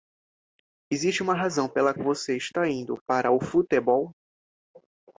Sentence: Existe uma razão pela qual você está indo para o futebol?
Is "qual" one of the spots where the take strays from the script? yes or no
yes